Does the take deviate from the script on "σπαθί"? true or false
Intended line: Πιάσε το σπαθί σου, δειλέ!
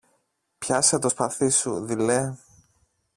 false